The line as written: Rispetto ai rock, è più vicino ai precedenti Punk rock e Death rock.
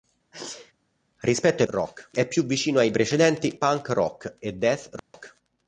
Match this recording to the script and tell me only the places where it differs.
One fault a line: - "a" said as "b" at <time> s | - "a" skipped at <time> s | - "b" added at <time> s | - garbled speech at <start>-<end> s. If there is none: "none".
none